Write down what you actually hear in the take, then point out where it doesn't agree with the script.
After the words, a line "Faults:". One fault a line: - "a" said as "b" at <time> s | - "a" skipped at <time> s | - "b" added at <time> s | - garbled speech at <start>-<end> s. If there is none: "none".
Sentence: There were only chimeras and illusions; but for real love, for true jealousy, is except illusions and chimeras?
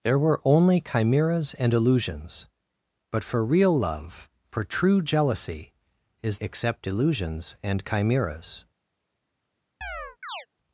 There were only chimeras and illusions; but for real love, for true jealousy, is except illusions and chimeras?
Faults:
none